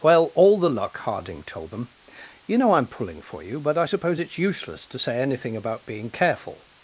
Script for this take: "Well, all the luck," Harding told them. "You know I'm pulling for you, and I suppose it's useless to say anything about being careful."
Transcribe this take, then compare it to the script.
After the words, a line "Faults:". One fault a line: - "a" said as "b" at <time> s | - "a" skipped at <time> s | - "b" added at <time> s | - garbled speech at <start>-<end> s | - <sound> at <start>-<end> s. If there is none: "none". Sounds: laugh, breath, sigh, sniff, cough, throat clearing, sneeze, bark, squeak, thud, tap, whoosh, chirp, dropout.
"Well, all the luck," Harding told them. "You know I'm pulling for you, but I suppose it's useless to say anything about being careful."
Faults:
- "and" said as "but" at 3.6 s